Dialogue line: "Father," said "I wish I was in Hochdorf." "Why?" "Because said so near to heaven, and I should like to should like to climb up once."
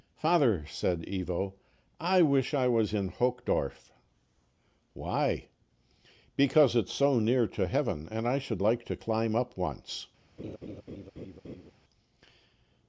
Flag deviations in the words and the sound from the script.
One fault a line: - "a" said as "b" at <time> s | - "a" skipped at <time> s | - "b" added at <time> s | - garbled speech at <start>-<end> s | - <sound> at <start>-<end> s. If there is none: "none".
- "Ivo" added at 1.1 s
- "said" said as "it's" at 6.8 s
- "should like to" skipped at 8.9 s
- laugh at 10.4-11.7 s